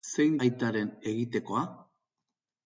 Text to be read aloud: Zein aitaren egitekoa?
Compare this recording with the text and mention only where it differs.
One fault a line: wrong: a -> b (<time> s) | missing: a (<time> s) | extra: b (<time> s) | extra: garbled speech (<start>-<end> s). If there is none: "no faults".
no faults